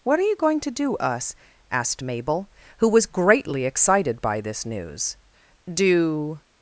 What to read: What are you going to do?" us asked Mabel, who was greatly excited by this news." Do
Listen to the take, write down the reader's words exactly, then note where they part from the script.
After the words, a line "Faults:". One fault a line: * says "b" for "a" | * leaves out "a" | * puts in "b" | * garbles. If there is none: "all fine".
What are you going to do?" us asked Mabel, who was greatly excited by this news." Do
Faults:
all fine